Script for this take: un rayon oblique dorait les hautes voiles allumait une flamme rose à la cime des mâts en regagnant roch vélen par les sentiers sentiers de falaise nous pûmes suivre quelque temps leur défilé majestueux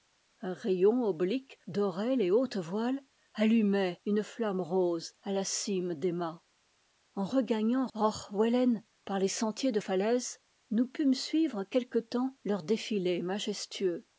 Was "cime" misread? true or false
false